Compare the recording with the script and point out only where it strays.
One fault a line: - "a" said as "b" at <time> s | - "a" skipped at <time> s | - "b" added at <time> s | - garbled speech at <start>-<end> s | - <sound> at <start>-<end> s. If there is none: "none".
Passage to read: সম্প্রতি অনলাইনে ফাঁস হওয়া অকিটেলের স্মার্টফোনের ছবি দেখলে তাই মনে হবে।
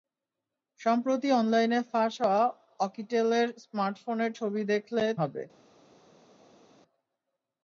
- "তাই মনে" skipped at 5.0 s